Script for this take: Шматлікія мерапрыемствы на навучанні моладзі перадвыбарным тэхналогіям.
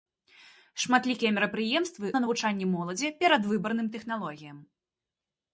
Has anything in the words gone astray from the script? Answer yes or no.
no